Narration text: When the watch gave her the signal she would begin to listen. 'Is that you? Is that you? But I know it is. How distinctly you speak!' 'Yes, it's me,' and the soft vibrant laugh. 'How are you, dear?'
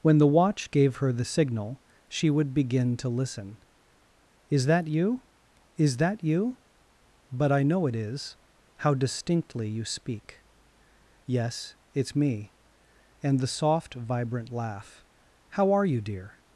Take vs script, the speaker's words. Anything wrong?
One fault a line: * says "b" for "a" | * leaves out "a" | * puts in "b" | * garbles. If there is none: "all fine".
all fine